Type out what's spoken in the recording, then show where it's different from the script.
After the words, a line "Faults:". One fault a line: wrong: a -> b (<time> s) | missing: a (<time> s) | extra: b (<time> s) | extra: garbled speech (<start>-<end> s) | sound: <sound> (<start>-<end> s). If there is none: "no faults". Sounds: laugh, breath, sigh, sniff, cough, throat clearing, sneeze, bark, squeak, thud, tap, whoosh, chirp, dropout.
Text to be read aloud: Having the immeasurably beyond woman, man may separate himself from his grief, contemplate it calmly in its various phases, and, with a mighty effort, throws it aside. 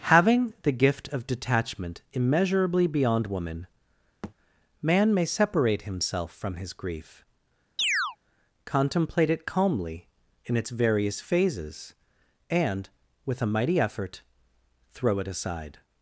Having the gift of detachment immeasurably beyond woman, man may separate himself from his grief, contemplate it calmly in its various phases, and, with a mighty effort, throw it aside.
Faults:
extra: gift of detachment (0.7 s)
sound: thud (4.2-4.3 s)
sound: chirp (7.8-8.2 s)
wrong: throws -> throw (14.9 s)